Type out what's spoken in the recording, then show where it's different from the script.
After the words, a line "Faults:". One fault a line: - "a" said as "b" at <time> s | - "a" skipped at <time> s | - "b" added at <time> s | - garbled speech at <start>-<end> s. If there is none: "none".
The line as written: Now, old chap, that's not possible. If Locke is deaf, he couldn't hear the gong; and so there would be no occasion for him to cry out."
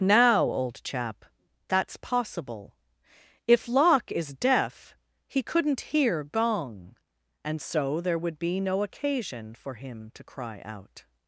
Now, old chap, that's possible. If Locke is deaf, he couldn't hear gong; and so there would be no occasion for him to cry out."
Faults:
- "not" skipped at 2.0 s
- "the" skipped at 6.2 s